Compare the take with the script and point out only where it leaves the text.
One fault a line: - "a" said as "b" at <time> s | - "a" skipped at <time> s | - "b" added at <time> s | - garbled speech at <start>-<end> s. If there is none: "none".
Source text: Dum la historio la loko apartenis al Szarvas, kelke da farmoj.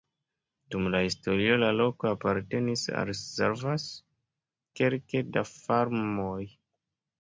none